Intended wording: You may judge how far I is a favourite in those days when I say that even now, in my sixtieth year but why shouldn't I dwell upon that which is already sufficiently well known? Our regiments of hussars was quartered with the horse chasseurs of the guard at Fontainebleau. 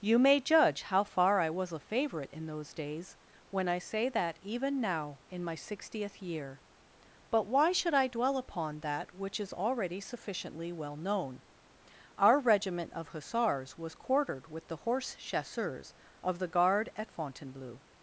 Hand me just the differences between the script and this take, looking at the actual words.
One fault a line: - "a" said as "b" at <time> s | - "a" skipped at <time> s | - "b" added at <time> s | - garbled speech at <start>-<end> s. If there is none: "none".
- "is" said as "was" at 1.5 s
- "shouldn't" said as "should" at 7.7 s
- "regiments" said as "regiment" at 12.4 s